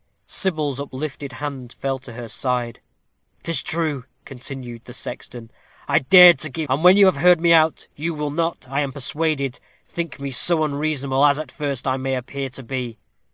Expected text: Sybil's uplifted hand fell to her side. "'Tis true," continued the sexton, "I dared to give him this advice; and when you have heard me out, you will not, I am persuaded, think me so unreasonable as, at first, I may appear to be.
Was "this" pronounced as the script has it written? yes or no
no